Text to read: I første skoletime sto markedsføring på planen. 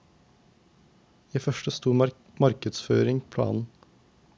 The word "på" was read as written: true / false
false